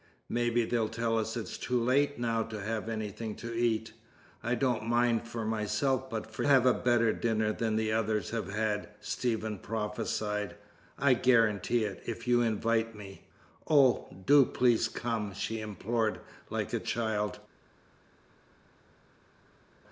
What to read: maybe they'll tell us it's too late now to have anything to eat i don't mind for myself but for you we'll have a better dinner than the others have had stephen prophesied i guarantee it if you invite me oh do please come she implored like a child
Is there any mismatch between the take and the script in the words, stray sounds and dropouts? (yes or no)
yes